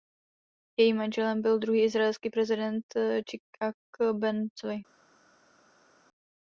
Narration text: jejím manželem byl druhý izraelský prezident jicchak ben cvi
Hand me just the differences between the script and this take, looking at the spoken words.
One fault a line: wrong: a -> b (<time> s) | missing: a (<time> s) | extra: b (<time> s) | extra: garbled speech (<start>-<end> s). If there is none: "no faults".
no faults